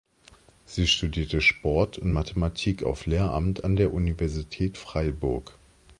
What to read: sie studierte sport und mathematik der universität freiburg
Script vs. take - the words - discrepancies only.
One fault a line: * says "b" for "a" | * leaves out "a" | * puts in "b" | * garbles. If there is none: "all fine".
* puts in "auf lehramt an"